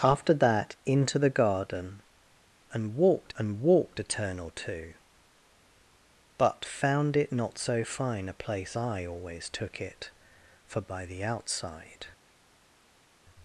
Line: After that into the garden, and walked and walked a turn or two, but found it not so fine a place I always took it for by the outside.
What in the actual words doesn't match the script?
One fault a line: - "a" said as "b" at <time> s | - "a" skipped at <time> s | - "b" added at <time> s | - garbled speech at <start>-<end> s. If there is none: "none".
none